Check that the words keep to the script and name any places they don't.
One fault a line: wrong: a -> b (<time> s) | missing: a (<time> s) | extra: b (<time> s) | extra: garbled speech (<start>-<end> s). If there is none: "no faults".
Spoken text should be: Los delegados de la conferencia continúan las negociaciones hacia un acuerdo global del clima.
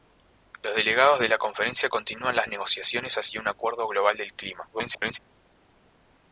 extra: garbled speech (4.7-5.2 s)